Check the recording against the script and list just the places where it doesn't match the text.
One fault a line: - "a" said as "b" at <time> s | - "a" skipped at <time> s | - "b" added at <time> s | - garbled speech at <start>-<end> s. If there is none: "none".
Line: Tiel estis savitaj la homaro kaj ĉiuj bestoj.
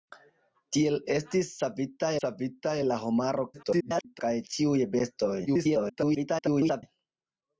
- "savitaj" added at 2.2 s
- garbled speech at 3.5-4.2 s
- garbled speech at 5.5-6.8 s